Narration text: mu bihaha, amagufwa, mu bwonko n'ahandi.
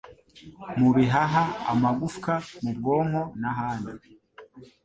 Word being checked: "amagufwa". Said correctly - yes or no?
yes